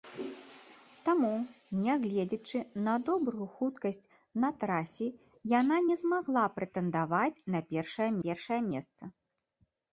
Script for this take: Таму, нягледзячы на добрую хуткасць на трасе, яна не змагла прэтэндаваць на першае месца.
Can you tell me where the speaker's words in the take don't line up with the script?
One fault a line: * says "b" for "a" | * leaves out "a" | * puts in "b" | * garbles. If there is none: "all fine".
* puts in "першае"